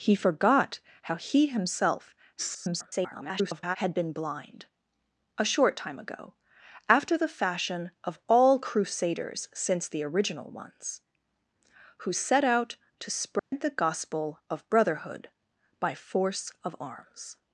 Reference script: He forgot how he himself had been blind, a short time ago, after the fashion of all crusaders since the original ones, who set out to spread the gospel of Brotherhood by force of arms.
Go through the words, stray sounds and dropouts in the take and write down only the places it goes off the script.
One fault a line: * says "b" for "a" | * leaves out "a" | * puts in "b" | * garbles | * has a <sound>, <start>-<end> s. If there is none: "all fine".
* garbles
* has a dropout, 13.4-13.5 s